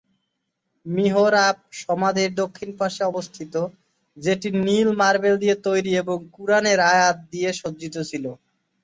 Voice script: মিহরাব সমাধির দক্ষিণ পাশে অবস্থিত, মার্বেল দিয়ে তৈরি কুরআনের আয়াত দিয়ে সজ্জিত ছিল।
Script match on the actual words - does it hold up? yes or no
no